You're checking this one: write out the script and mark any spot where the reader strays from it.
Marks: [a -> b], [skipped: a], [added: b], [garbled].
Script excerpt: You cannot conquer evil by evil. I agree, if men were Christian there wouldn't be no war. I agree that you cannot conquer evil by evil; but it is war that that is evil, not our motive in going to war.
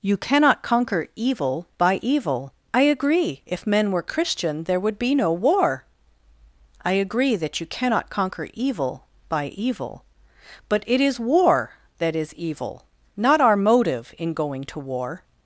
You cannot conquer evil by evil. I agree, if men were Christian there [wouldn't -> would] be no war. I agree that you cannot conquer evil by evil; but it is war that [skipped: that] is evil, not our motive in going to war.